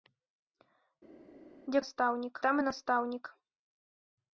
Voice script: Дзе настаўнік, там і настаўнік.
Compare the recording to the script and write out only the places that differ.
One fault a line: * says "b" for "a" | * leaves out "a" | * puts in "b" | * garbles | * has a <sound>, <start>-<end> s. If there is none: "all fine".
all fine